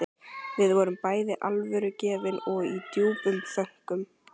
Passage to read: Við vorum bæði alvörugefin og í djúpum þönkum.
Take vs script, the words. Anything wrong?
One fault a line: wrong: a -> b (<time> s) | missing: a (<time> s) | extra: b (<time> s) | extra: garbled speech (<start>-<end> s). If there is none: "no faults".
no faults